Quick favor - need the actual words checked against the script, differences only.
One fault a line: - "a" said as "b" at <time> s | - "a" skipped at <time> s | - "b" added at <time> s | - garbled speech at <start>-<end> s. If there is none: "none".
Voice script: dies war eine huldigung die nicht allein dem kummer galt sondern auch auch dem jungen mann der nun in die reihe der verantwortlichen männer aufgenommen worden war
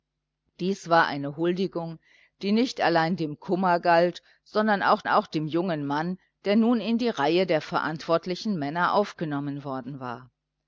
none